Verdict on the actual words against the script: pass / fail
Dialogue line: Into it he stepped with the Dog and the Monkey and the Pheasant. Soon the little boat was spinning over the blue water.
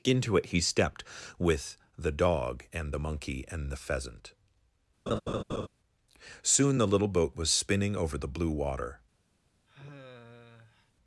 pass